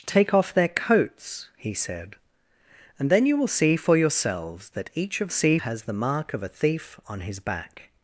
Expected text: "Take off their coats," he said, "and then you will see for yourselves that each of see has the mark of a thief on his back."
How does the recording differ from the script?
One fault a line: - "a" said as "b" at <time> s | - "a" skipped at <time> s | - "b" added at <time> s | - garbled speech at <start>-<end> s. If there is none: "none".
none